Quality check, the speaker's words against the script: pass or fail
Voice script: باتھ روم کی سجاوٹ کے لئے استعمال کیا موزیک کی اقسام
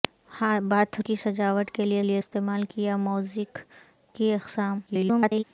fail